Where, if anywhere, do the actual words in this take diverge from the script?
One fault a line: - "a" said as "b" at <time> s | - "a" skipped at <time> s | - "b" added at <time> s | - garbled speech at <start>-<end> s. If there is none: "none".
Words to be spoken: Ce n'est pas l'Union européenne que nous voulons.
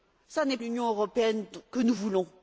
- "pas" skipped at 0.6 s